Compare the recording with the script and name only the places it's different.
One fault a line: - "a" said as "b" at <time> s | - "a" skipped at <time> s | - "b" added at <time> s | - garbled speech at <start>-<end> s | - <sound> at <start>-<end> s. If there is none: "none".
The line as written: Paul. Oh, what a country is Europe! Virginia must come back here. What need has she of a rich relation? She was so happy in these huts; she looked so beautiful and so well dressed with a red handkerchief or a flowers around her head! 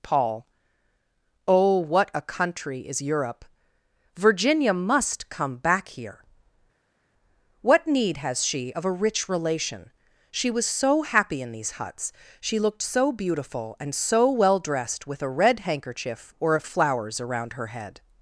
none